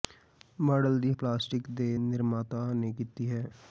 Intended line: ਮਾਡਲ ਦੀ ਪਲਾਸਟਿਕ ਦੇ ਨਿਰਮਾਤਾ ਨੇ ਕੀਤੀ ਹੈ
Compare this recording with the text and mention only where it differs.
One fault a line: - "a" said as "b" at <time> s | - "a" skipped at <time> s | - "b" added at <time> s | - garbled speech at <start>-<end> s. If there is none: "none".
none